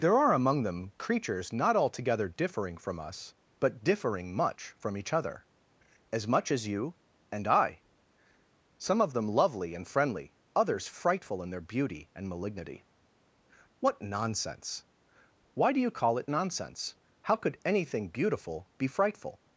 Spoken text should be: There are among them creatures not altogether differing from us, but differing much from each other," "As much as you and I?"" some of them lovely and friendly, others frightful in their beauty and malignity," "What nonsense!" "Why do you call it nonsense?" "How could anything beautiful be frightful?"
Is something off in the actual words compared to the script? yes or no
no